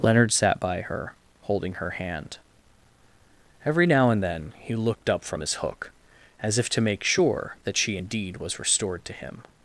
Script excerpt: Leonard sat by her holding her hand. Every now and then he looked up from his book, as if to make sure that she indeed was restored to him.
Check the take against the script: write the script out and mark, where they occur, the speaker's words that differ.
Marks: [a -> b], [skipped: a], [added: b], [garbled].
Leonard sat by her holding her hand. Every now and then he looked up from his [book, -> hook] as if to make sure that she indeed was restored to him.